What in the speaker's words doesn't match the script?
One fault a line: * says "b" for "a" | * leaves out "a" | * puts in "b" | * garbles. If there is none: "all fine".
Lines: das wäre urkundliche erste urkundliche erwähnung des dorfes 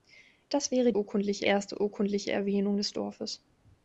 all fine